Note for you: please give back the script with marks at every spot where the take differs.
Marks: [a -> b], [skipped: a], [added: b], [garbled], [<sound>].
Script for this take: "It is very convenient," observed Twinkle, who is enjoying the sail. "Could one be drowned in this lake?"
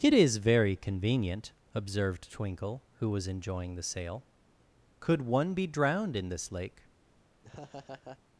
"It is very convenient," observed Twinkle, who [is -> was] enjoying the sail. "Could one be drowned in this lake?" [laugh]